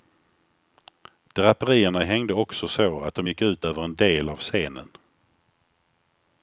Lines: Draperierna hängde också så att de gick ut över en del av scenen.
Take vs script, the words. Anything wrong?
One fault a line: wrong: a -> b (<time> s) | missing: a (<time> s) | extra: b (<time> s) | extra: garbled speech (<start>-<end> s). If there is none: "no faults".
no faults